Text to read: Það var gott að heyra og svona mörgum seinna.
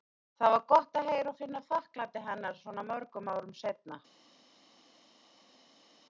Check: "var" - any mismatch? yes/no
no